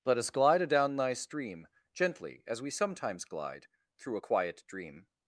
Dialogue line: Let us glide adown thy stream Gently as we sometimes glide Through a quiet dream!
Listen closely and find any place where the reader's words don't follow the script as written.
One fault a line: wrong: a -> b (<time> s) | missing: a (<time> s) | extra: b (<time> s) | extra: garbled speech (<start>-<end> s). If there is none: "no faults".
no faults